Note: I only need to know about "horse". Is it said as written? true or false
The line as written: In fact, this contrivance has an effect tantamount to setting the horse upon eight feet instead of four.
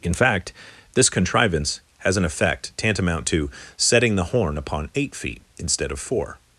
false